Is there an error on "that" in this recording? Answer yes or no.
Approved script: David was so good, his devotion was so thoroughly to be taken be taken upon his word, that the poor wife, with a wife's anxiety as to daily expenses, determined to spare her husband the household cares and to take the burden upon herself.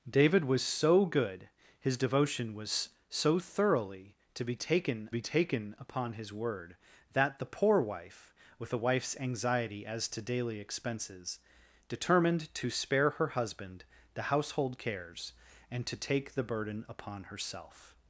no